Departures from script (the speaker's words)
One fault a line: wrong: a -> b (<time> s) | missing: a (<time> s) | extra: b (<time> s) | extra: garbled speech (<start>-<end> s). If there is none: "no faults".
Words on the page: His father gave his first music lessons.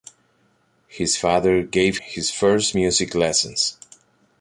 no faults